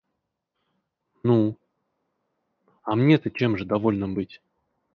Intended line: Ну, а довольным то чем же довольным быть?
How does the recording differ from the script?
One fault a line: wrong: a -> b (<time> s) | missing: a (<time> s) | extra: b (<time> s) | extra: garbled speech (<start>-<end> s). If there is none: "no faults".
wrong: довольным -> мне (3.0 s)